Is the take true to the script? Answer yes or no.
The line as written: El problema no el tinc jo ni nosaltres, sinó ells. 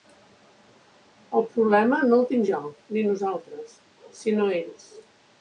yes